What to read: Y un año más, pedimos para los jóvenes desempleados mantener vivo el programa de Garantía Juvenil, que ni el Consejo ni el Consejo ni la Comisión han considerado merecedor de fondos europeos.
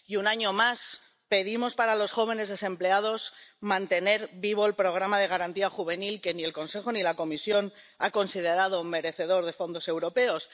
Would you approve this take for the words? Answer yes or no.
no